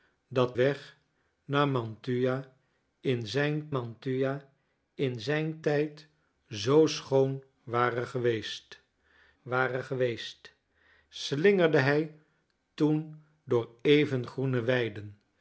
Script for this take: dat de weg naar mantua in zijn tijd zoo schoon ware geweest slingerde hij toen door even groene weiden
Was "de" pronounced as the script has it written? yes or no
no